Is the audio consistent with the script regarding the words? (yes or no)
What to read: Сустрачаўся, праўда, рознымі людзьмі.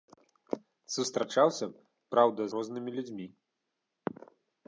yes